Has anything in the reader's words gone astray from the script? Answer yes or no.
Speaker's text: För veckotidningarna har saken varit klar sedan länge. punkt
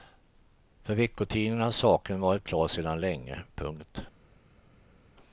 no